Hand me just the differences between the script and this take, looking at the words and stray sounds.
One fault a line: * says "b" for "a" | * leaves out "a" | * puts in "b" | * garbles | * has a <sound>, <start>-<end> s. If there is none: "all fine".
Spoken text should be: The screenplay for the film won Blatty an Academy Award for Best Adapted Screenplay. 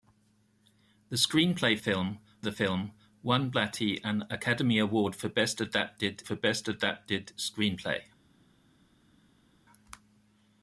* says "film" for "for"
* puts in "for Best Adapted"